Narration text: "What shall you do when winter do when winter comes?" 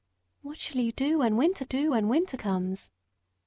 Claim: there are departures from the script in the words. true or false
false